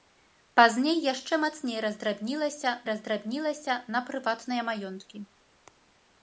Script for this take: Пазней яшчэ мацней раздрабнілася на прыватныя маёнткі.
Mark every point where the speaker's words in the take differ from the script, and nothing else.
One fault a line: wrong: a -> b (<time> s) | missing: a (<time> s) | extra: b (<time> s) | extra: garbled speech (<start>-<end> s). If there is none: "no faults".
extra: раздрабнілася (2.9 s)